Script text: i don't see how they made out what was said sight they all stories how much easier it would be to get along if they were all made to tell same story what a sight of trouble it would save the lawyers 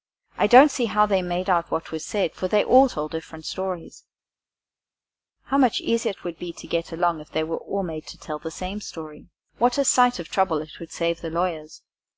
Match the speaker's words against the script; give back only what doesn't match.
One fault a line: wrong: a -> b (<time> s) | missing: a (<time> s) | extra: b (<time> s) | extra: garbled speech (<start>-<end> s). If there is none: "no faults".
wrong: sight -> for (2.3 s)
extra: told different (2.9 s)
extra: the (8.4 s)